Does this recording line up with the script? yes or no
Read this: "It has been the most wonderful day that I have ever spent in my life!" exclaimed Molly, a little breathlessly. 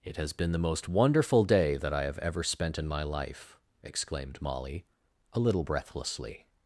yes